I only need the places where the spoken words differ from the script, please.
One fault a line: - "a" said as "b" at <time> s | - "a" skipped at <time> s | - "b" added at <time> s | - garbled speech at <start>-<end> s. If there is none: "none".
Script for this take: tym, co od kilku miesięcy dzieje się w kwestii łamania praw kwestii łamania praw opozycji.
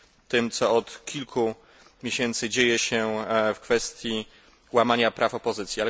- "kwestii łamania praw" skipped at 5.3 s